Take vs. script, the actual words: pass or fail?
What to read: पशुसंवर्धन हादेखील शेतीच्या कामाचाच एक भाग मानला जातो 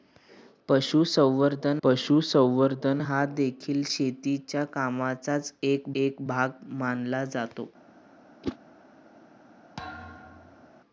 fail